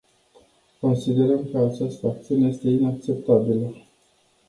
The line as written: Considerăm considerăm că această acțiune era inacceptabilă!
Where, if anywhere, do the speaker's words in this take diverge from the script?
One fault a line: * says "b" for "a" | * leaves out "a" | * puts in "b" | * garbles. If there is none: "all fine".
* leaves out "considerăm"
* says "este" for "era"